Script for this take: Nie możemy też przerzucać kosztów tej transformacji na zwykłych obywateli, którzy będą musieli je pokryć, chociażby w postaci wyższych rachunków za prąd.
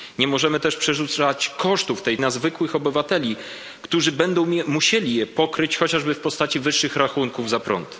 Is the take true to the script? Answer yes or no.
no